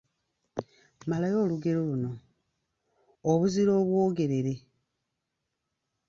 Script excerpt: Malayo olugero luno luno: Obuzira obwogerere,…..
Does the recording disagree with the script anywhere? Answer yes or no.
yes